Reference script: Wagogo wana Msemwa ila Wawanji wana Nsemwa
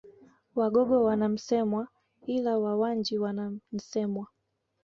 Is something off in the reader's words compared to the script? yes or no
no